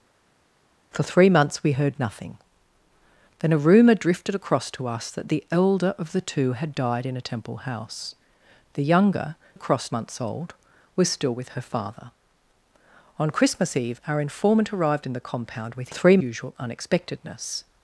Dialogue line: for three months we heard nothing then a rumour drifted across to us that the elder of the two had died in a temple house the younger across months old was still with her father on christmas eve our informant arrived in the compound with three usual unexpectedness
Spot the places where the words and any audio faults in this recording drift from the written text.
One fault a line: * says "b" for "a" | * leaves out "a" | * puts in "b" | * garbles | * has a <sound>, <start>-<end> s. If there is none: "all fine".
all fine